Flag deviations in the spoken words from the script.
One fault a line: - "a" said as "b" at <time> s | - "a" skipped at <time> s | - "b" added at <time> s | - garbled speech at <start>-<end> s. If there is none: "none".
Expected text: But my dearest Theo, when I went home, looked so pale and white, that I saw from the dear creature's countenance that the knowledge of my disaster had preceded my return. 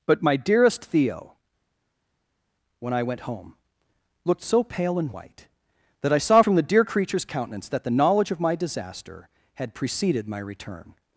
none